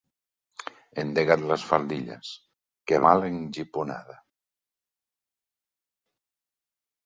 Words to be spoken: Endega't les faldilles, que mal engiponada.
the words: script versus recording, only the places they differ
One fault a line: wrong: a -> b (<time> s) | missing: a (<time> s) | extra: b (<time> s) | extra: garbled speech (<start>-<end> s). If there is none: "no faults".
no faults